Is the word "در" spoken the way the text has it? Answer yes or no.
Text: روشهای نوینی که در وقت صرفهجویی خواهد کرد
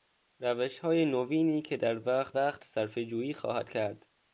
yes